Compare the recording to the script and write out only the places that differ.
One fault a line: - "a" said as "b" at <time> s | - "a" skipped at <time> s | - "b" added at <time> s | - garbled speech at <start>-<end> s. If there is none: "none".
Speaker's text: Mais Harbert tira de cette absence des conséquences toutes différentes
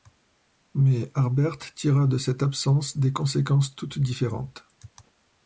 none